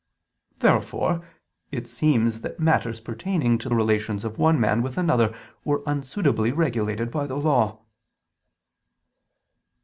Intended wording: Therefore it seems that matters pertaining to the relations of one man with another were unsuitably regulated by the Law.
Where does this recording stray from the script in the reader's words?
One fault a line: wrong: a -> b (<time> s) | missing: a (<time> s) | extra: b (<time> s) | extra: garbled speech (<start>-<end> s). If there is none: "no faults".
missing: the (3.7 s)